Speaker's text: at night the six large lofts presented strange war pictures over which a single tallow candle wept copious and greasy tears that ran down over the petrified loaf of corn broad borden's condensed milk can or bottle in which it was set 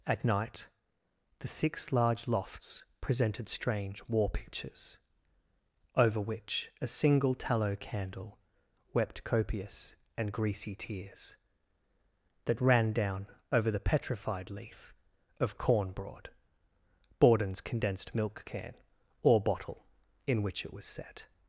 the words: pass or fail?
fail